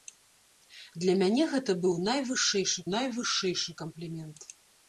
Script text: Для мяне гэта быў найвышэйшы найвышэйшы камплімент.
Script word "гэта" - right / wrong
right